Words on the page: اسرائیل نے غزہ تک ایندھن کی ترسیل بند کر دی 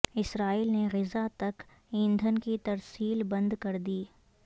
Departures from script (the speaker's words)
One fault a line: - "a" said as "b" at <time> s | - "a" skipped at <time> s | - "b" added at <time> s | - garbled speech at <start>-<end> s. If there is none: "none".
none